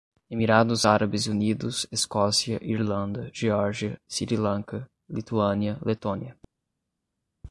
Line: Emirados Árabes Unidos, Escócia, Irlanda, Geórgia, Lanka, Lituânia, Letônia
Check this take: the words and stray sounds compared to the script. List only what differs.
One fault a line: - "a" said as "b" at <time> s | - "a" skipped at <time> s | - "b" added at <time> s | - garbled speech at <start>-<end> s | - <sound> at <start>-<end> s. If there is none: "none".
- "Sri" added at 4.1 s